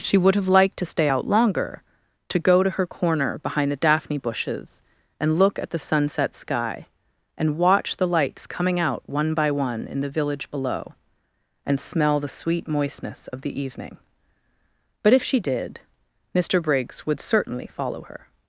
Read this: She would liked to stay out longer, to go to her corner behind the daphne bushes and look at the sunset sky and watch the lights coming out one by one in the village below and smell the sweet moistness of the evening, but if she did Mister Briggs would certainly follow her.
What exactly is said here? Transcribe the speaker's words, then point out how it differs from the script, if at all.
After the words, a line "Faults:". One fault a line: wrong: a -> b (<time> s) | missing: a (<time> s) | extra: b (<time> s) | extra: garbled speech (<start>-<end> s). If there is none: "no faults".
She would have liked to stay out longer, to go to her corner behind the daphne bushes and look at the sunset sky and watch the lights coming out one by one in the village below and smell the sweet moistness of the evening, but if she did Mister Briggs would certainly follow her.
Faults:
extra: have (0.3 s)